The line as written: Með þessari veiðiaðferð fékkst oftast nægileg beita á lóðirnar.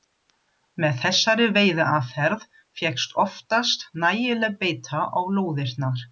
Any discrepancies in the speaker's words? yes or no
no